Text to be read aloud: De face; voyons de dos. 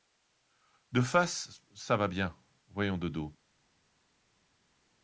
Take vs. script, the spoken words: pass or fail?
fail